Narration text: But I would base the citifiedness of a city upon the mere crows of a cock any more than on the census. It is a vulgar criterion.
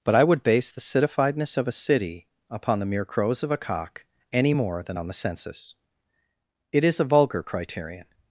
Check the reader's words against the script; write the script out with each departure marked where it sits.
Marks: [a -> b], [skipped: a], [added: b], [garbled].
But I would base the citifiedness of a city upon the mere crows of a cock any more than on the census. It is a vulgar criterion.